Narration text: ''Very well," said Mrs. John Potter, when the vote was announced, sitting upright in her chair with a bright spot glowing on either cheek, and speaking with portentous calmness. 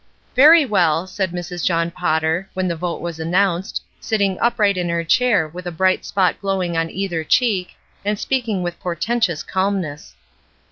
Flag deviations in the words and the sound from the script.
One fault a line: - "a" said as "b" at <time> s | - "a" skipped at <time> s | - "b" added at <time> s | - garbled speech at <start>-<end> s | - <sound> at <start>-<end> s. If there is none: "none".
none